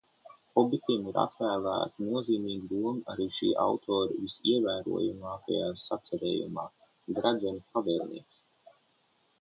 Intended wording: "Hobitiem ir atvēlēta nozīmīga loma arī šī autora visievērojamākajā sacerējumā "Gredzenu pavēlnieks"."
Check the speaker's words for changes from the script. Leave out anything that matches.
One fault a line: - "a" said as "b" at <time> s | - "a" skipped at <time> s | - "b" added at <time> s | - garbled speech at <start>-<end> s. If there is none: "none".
none